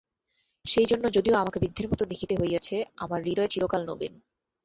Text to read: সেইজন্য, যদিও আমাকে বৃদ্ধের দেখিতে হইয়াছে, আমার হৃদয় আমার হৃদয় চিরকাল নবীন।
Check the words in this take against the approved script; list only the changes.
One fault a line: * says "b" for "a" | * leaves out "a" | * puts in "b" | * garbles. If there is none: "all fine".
* puts in "মতো"
* leaves out "আমার হৃদয়"